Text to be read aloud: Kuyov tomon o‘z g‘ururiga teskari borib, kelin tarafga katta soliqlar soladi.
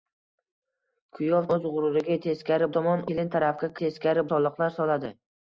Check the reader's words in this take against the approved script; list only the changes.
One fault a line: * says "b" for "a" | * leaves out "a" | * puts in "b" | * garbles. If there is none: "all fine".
* leaves out "tomon"
* says "tomon" for "borib"
* says "teskari" for "katta"